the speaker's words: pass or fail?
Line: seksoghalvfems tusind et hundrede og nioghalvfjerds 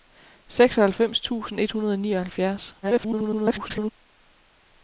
fail